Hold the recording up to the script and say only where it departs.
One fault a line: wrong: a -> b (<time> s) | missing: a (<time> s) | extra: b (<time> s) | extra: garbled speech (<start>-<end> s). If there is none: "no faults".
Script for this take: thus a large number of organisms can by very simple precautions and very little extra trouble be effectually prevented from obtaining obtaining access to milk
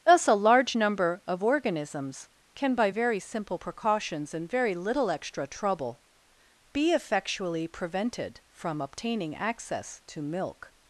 missing: obtaining (9.3 s)